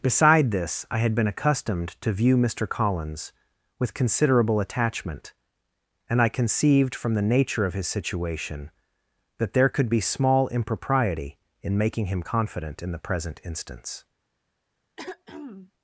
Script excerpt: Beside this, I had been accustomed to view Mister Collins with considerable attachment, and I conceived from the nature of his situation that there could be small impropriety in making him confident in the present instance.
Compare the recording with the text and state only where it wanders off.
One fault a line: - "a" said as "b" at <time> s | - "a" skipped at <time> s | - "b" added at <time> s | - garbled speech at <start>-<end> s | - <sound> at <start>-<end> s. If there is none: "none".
- throat clearing at 15.0-15.7 s